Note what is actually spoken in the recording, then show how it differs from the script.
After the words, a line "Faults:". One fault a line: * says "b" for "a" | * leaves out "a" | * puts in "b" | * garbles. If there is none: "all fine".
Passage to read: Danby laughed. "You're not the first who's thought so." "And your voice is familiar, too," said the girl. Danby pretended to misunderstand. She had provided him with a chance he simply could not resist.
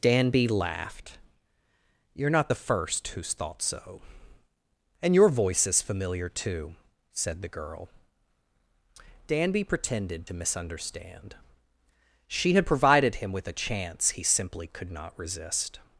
Danby laughed. "You're not the first who's thought so." "And your voice is familiar, too," said the girl. Danby pretended to misunderstand. She had provided him with a chance he simply could not resist.
Faults:
all fine